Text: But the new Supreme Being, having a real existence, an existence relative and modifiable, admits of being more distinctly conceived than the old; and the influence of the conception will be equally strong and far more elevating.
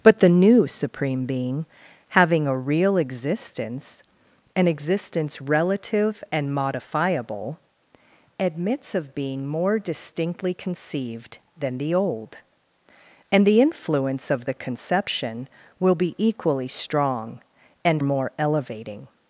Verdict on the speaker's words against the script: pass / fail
fail